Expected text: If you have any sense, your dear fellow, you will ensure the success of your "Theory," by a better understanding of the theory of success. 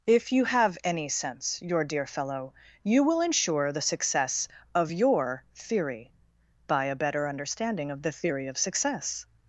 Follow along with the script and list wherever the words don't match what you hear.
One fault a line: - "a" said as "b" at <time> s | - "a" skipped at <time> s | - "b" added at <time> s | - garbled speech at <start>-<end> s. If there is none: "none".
none